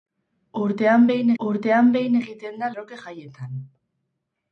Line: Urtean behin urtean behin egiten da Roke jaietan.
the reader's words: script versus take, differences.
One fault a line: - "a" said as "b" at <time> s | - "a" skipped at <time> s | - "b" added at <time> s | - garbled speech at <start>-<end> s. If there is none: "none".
none